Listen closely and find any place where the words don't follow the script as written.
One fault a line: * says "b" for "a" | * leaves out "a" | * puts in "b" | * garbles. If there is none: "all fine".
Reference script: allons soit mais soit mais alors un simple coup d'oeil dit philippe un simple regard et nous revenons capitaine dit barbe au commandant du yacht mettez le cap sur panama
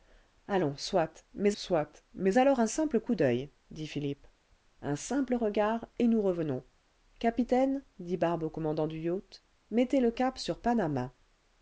all fine